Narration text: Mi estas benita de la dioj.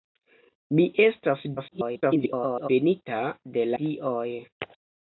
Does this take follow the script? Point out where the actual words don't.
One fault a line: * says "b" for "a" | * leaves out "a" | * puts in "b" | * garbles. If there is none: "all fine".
* garbles
* leaves out "la"